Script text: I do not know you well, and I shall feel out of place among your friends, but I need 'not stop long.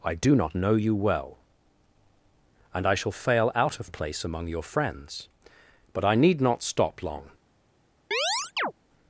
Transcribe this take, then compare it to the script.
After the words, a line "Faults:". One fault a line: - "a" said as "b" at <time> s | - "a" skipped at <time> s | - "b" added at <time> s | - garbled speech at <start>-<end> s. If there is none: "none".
I do not know you well, and I shall fail out of place among your friends, but I need 'not stop long.
Faults:
- "feel" said as "fail" at 3.1 s